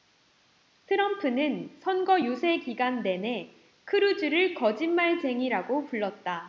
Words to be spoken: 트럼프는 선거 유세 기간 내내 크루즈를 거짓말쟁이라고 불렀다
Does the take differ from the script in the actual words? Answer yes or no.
no